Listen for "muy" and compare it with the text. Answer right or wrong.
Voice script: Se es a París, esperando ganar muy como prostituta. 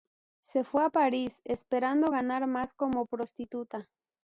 wrong